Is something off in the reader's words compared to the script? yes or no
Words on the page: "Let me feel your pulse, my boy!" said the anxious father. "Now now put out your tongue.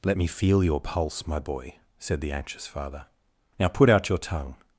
yes